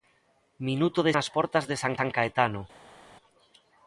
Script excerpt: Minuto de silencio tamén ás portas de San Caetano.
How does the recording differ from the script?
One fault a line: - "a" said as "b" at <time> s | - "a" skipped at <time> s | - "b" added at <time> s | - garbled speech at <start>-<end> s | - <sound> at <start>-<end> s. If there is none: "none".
- "silencio tamén" skipped at 1.1 s
- "San" added at 2.0 s